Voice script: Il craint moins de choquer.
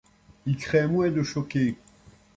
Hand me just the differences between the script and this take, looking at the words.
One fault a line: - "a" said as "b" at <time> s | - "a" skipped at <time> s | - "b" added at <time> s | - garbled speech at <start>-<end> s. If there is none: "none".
none